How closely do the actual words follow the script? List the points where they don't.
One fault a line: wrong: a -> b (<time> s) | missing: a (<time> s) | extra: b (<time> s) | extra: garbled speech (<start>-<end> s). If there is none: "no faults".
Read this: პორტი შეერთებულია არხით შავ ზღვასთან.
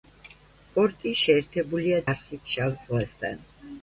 no faults